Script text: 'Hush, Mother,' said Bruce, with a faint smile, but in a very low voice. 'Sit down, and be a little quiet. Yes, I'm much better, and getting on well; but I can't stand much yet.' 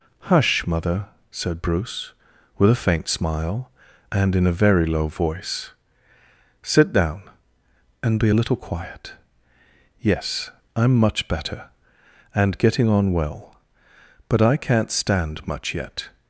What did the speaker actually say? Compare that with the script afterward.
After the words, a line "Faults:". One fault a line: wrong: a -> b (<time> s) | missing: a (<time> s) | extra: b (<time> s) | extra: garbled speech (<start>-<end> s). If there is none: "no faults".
'Hush, Mother,' said Bruce, with a faint smile, and in a very low voice. 'Sit down, and be a little quiet. Yes, I'm much better, and getting on well; but I can't stand much yet.'
Faults:
wrong: but -> and (4.1 s)